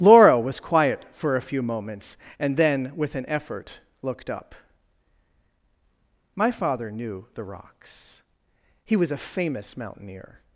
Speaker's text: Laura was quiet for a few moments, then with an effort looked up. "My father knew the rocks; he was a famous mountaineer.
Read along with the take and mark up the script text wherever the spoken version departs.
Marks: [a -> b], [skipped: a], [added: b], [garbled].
Laura was quiet for a few moments, [added: and] then with an effort looked up. "My father knew the rocks; he was a famous mountaineer.